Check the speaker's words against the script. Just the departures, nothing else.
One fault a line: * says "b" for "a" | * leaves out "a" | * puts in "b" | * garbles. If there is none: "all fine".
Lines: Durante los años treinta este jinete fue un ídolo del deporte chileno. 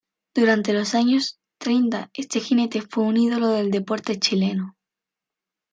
all fine